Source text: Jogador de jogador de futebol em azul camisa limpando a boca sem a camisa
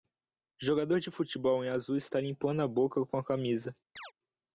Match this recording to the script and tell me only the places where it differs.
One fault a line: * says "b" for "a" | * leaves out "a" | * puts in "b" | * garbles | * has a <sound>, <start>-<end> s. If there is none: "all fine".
* leaves out "jogador de"
* says "está" for "camisa"
* says "com" for "sem"
* has a chirp, 4.0-4.1 s